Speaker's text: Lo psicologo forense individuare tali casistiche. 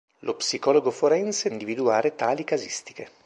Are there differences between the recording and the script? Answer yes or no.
no